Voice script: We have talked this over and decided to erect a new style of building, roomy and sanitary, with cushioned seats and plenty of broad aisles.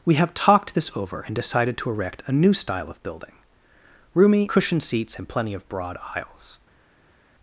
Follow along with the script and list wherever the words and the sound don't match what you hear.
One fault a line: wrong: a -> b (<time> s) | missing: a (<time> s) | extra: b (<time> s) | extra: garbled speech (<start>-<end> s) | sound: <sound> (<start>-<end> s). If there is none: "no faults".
missing: and sanitary with (4.5 s)